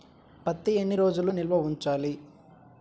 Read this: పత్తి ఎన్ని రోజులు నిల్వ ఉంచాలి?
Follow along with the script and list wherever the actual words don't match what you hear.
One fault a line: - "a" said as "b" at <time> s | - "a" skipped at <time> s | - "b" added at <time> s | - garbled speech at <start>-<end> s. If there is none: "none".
none